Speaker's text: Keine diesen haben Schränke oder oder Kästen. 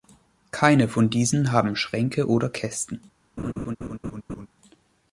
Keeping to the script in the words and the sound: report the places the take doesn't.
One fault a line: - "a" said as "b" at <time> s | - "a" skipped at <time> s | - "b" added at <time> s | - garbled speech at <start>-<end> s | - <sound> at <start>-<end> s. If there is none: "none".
- "von" added at 0.9 s
- "oder" skipped at 2.5 s
- laugh at 3.4-4.5 s